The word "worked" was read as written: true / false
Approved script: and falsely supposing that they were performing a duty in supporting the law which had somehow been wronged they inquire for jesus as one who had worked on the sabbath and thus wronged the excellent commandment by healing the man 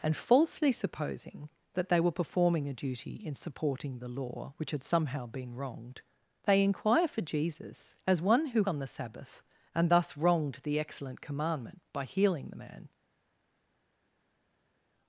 false